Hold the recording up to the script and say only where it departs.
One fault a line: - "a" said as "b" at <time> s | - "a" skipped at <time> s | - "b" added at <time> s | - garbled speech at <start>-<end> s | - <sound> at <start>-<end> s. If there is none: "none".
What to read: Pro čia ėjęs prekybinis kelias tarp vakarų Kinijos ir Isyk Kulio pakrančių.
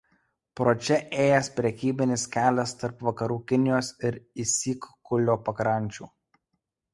none